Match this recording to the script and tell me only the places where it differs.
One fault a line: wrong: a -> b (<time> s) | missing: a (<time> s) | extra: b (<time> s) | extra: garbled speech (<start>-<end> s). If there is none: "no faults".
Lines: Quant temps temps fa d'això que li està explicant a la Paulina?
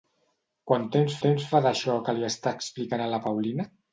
no faults